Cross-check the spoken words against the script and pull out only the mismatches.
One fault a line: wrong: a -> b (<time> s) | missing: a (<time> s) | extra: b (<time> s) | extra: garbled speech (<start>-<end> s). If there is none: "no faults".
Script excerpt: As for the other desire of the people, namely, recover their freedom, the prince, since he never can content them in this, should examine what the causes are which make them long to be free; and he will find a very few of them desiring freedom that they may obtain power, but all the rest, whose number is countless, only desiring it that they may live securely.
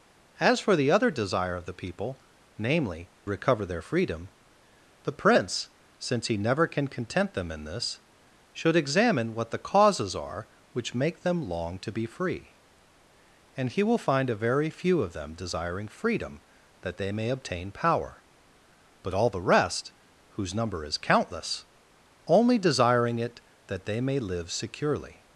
no faults